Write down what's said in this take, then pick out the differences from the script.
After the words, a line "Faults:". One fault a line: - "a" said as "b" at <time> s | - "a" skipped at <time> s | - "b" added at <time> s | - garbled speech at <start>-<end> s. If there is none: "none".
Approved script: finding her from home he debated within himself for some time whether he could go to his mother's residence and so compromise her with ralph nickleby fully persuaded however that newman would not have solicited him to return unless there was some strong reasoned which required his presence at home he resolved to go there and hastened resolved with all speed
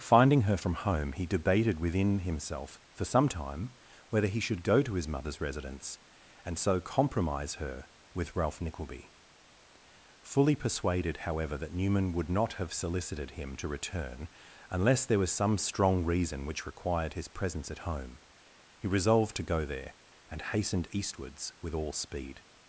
finding her from home he debated within himself for some time whether he should go to his mother's residence and so compromise her with ralph nickleby fully persuaded however that newman would not have solicited him to return unless there was some strong reason which required his presence at home he resolved to go there and hastened eastwards with all speed
Faults:
- "could" said as "should" at 4.4 s
- "reasoned" said as "reason" at 16.1 s
- "resolved" said as "eastwards" at 20.9 s